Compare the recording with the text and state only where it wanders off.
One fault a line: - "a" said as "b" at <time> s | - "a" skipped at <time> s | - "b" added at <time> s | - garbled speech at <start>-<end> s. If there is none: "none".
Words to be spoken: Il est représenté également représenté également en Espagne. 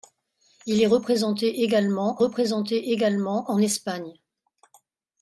none